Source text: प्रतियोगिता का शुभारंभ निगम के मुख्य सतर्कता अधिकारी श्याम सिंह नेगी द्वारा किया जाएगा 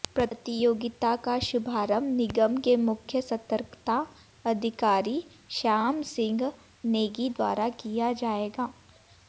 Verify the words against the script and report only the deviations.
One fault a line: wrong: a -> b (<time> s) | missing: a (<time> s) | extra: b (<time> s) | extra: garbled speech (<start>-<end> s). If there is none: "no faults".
no faults